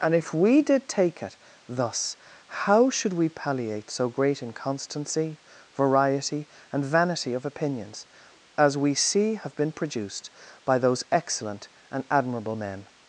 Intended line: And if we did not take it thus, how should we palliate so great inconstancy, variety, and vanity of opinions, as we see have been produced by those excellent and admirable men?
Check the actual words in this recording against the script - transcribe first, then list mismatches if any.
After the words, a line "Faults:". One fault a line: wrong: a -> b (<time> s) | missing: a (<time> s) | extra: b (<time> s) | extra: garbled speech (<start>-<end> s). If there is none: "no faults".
And if we did take it thus, how should we palliate so great inconstancy, variety, and vanity of opinions, as we see have been produced by those excellent and admirable men?
Faults:
missing: not (0.9 s)